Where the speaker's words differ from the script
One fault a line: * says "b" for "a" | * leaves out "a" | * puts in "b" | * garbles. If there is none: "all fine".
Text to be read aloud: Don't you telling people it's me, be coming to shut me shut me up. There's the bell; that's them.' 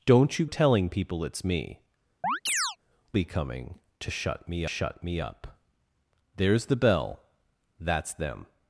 all fine